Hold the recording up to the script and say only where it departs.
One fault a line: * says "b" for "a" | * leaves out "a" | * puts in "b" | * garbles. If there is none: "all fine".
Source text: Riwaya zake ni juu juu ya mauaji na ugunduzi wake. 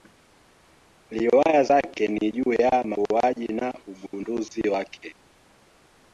* leaves out "juu"